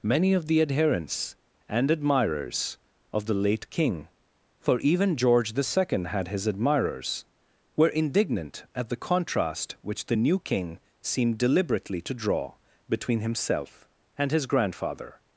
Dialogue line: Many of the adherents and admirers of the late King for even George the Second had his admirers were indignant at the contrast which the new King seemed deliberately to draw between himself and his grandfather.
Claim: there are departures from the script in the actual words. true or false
false